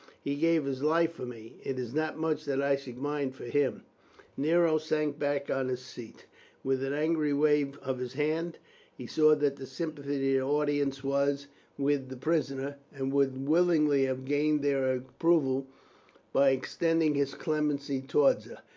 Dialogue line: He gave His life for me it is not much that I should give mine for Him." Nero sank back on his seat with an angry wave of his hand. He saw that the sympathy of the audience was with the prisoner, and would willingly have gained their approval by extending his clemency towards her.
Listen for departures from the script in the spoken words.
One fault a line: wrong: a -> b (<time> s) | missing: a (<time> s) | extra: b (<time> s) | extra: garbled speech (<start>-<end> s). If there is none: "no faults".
missing: give (3.0 s)